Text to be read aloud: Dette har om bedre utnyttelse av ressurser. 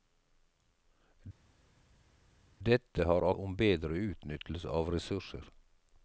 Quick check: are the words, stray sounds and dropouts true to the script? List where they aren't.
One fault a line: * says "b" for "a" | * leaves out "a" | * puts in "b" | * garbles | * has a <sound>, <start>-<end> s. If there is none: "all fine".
all fine